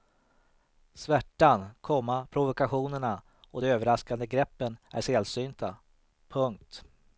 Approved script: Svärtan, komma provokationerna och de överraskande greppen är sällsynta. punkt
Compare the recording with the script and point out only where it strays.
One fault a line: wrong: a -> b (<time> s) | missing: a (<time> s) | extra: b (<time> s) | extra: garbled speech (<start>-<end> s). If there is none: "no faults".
no faults